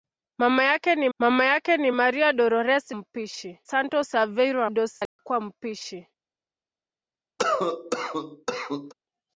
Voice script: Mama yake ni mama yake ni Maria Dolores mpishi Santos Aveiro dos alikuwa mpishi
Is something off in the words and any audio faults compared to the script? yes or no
yes